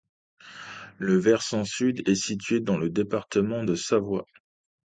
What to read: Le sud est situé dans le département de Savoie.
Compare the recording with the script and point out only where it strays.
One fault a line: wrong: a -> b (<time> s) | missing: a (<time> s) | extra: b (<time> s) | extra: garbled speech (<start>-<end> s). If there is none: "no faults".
extra: versant (1.2 s)